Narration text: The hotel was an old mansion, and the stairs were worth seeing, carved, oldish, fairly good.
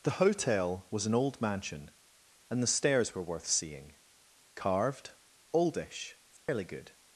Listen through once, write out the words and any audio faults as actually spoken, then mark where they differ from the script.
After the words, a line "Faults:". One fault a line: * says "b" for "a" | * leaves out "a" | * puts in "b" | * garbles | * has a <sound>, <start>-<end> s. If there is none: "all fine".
The hotel was an old mansion, and the stairs were worth seeing, carved, oldish, fairly good.
Faults:
* has a dropout, 6.4-6.5 s